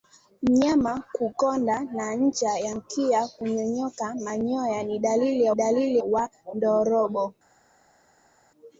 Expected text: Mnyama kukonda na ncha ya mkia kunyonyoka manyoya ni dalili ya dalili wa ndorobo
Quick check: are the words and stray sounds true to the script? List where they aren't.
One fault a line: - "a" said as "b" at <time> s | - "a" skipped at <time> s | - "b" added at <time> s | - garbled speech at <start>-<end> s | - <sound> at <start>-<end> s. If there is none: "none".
none